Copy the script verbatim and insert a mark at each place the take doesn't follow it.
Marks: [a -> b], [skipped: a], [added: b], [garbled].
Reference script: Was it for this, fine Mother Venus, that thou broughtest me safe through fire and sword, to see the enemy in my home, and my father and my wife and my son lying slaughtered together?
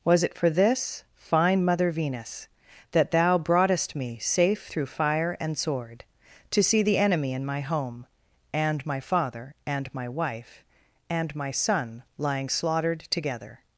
Was it for this, fine Mother Venus, that thou broughtest me safe through fire and sword, to see the enemy in my home, and my father and my wife and my son lying slaughtered together?